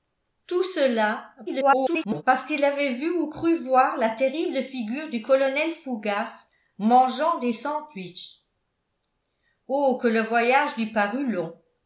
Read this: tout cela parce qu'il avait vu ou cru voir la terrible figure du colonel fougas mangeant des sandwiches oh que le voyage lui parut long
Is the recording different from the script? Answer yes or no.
yes